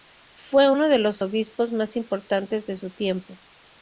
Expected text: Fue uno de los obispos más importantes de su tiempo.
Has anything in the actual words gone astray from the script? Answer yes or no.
no